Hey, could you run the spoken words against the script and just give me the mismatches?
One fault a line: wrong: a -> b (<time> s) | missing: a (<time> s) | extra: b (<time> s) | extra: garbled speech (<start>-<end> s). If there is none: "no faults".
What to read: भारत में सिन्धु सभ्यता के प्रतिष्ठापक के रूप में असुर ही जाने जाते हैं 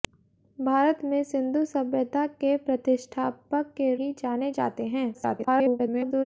missing: रूप में असुर (3.9 s)
extra: garbled speech (5.1-6.3 s)